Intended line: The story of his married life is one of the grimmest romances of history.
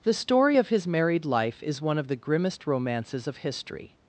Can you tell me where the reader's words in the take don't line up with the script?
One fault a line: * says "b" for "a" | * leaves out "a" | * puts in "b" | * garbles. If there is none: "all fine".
all fine